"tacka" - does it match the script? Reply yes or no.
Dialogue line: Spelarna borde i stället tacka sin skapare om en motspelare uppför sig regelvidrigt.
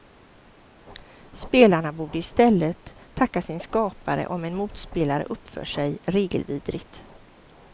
yes